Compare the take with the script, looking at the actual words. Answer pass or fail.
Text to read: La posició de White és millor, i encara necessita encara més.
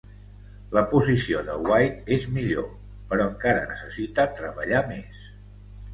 fail